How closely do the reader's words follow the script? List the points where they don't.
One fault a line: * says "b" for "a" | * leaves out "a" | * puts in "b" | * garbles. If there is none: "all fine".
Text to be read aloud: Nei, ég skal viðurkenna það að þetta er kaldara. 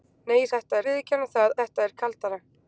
* says "þetta" for "skal"
* leaves out "að"